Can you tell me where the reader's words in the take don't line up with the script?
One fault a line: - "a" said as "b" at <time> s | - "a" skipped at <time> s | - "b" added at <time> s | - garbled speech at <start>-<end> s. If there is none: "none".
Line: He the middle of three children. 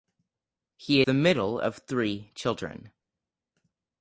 none